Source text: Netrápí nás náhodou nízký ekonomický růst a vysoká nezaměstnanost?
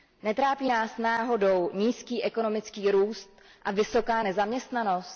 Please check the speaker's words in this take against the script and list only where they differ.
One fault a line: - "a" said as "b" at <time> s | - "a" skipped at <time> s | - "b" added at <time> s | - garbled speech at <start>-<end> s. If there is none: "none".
none